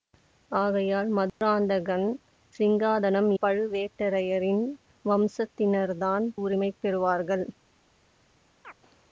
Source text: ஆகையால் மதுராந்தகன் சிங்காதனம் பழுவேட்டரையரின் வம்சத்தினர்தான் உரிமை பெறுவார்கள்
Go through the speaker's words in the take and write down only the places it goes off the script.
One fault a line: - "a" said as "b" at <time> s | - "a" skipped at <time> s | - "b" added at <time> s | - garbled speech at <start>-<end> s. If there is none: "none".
none